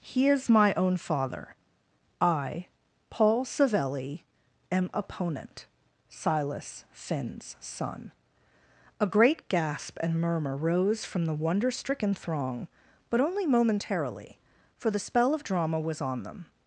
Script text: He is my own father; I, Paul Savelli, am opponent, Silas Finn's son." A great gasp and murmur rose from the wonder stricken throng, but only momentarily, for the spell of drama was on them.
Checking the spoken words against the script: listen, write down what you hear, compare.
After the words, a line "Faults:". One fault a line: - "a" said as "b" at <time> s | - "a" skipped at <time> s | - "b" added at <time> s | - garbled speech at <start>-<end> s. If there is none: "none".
He is my own father; I, Paul Savelli, am opponent, Silas Finn's son." A great gasp and murmur rose from the wonder stricken throng, but only momentarily, for the spell of drama was on them.
Faults:
none